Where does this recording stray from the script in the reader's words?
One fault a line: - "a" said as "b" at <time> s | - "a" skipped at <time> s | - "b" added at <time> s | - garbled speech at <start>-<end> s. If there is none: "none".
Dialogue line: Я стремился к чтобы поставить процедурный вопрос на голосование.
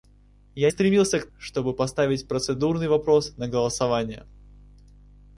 none